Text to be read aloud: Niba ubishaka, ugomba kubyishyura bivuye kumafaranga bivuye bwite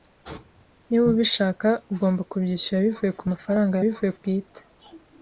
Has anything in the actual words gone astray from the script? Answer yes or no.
no